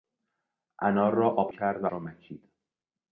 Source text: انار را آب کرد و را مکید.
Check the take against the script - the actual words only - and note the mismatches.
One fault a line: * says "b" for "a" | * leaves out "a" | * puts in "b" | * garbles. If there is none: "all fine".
all fine